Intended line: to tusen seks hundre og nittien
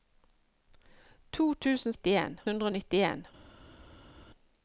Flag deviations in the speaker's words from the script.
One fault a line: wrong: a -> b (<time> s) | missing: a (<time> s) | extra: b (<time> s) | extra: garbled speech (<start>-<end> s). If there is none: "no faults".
wrong: seks -> nittien (1.9 s)